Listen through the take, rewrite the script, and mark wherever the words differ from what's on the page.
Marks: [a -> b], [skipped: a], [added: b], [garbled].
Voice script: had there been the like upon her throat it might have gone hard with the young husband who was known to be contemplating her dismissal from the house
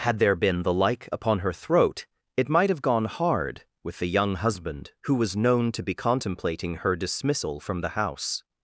had there been the like upon her throat it might have gone hard with the young husband who was known to be contemplating her dismissal from the house